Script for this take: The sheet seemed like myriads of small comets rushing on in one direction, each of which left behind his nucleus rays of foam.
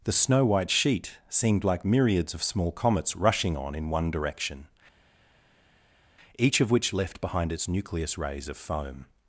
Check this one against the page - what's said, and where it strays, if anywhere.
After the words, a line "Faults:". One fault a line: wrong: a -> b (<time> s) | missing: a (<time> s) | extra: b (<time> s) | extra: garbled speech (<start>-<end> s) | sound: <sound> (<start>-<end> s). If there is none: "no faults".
The snow white sheet seemed like myriads of small comets rushing on in one direction, each of which left behind its nucleus rays of foam.
Faults:
extra: snow white (0.1 s)
wrong: his -> its (7.5 s)